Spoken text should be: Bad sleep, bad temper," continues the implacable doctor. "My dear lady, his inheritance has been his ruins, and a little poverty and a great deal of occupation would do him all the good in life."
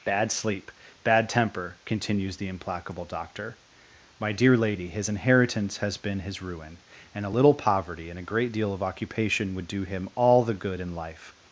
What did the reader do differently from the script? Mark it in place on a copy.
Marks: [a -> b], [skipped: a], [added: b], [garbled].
Bad sleep, bad temper," continues the implacable doctor. "My dear lady, his inheritance has been his [ruins, -> ruin] and a little poverty and a great deal of occupation would do him all the good in life."